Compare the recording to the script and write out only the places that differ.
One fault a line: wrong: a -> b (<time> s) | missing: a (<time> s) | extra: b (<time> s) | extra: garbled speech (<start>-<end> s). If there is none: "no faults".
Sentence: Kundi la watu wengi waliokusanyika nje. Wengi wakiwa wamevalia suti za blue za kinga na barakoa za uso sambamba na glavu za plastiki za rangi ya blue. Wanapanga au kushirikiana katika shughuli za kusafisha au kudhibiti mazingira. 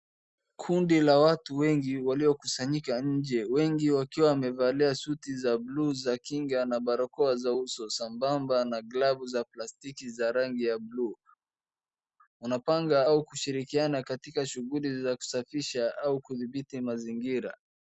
no faults